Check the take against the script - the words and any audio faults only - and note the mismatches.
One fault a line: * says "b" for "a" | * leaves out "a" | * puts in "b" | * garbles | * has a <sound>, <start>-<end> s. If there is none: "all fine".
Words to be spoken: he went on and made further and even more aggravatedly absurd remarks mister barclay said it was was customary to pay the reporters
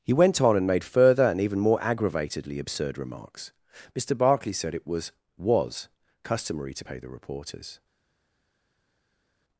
all fine